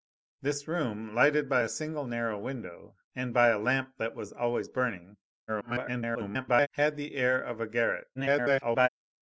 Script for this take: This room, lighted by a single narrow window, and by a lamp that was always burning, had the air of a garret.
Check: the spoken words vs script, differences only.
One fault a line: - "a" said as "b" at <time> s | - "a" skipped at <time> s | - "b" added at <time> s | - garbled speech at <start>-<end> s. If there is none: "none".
- garbled speech at 5.5-6.7 s
- garbled speech at 8.2-8.9 s